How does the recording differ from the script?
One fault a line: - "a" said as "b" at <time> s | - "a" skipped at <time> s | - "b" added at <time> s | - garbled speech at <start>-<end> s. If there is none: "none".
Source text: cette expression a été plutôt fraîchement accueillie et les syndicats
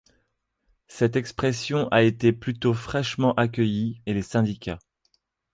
none